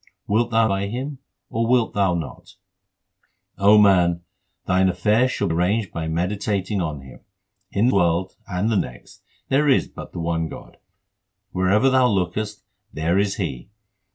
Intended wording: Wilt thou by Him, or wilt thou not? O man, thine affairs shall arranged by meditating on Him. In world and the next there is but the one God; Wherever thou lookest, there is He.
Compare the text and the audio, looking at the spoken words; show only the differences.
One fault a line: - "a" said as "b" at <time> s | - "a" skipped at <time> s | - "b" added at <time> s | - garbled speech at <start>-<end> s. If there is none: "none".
none